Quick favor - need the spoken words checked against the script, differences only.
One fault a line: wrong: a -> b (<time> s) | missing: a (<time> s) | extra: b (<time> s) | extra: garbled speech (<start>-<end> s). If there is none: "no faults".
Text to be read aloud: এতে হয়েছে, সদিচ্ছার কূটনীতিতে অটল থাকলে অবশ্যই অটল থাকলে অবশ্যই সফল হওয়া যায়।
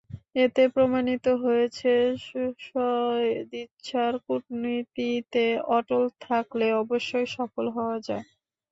extra: প্রমাণিত (0.8 s)
missing: অটল থাকলে অবশ্যই (7.3 s)